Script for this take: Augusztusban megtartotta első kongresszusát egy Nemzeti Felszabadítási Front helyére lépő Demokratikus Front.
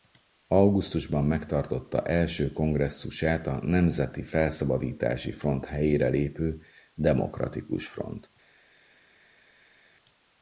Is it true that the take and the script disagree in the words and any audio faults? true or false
true